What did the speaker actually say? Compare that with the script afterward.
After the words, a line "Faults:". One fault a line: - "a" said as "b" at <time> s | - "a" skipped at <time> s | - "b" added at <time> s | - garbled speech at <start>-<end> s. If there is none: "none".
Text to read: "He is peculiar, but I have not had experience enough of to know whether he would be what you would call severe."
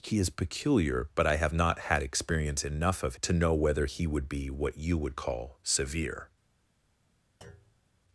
"He is peculiar, but I have not had experience enough of to know whether he would be what you would call severe."
Faults:
none